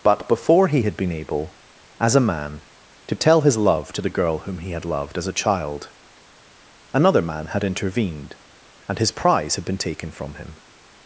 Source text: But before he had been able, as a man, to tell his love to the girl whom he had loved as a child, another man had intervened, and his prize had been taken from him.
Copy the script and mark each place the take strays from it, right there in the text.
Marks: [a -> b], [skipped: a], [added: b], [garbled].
But before he had been able, as a man, to tell his love to the girl whom he had loved as a child, another man had intervened, and his prize had been taken from him.